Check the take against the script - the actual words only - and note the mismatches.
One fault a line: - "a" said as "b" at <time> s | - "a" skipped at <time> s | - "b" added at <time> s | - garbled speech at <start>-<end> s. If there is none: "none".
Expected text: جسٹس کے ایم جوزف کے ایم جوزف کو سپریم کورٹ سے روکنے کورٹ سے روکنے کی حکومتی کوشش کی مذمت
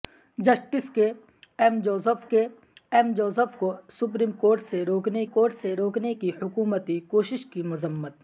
none